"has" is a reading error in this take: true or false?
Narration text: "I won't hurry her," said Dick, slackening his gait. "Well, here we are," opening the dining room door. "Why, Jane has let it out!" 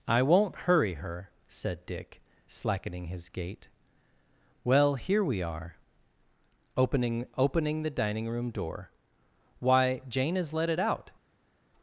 false